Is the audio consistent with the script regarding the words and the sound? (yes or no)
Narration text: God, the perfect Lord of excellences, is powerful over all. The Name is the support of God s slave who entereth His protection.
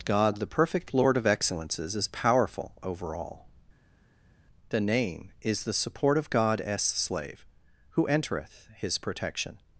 yes